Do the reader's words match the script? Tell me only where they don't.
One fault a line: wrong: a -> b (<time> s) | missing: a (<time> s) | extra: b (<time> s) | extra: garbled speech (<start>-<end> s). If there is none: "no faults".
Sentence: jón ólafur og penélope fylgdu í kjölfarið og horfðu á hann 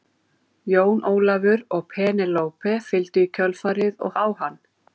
missing: horfðu (4.2 s)